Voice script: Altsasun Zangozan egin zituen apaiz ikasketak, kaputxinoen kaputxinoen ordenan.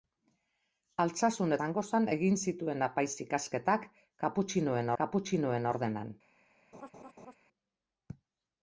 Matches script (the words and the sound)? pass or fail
fail